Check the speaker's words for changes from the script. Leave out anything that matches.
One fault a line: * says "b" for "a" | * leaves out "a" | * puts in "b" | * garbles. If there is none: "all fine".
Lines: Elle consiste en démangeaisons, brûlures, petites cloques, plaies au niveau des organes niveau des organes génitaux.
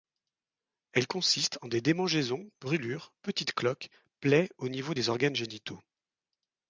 * puts in "des"
* leaves out "niveau des organes"